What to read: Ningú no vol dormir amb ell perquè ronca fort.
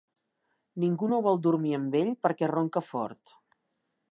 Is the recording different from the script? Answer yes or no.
no